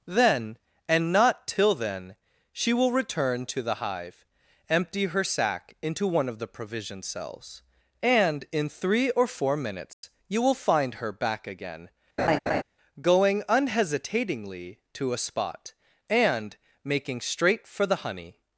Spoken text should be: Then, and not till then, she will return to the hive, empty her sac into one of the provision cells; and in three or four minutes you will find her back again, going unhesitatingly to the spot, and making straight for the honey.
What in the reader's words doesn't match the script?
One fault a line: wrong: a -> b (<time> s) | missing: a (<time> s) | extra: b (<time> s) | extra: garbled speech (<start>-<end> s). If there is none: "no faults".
wrong: the -> a (15.1 s)